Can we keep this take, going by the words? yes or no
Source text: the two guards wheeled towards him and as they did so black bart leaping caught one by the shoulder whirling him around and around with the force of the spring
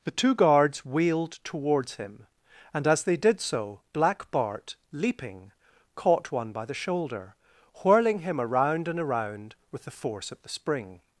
yes